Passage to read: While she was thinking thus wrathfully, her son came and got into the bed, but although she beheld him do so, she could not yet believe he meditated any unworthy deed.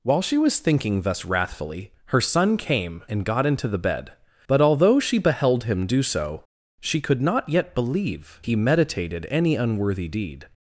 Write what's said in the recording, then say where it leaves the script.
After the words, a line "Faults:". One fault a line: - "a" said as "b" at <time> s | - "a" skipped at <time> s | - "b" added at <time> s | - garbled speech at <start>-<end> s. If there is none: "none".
While she was thinking thus wrathfully, her son came and got into the bed, but although she beheld him do so, she could not yet believe he meditated any unworthy deed.
Faults:
none